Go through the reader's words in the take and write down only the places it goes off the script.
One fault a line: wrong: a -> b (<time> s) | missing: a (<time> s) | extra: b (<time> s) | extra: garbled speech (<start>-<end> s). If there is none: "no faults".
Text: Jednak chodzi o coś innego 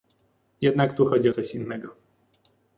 extra: tu (0.9 s)